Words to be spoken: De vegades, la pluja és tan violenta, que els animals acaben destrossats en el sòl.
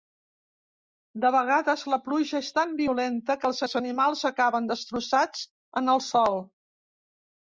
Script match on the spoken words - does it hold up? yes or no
no